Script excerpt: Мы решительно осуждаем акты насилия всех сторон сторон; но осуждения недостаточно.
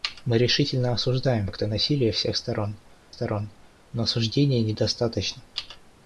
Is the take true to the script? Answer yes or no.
yes